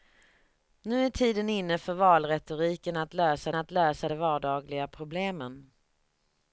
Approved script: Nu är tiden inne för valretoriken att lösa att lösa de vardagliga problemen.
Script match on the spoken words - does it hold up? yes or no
yes